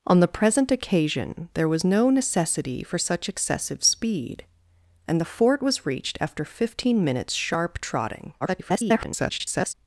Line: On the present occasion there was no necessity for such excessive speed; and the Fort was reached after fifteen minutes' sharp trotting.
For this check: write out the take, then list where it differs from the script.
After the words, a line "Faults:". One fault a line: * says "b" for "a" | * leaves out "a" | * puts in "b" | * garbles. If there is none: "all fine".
On the present occasion there was no necessity for such excessive speed; and the Fort was reached after fifteen minutes' sharp trotting. [garbled]
Faults:
* garbles